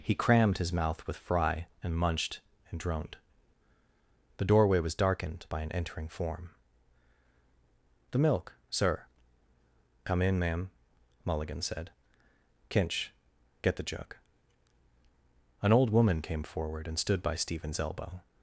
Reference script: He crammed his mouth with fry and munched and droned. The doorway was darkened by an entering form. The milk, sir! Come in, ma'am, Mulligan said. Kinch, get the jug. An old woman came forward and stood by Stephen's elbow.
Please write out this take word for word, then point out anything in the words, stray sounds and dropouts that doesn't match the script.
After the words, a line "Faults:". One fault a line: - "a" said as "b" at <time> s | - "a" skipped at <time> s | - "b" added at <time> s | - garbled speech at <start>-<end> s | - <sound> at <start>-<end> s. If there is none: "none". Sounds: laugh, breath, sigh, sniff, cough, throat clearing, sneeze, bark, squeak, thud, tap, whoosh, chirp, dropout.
He crammed his mouth with fry and munched and droned. The doorway was darkened by an entering form. The milk, sir! Come in, ma'am, Mulligan said. Kinch, get the jug. An old woman came forward and stood by Stephen's elbow.
Faults:
none